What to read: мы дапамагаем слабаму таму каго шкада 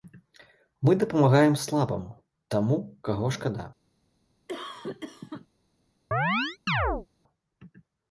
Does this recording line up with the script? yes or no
yes